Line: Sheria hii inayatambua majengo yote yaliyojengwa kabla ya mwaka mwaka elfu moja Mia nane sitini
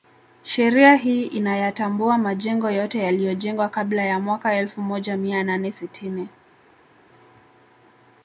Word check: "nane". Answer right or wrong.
right